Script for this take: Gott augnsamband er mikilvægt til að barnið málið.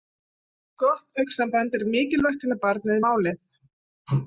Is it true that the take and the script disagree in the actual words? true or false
false